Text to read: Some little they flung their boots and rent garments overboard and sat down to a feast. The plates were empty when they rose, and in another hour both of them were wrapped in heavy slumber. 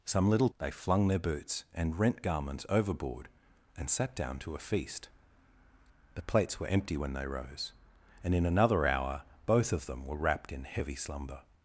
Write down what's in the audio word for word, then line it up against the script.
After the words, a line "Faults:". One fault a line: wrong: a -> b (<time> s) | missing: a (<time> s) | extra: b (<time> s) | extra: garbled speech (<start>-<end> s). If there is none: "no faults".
Some little they flung their boots and rent garments overboard and sat down to a feast. The plates were empty when they rose, and in another hour both of them were wrapped in heavy slumber.
Faults:
no faults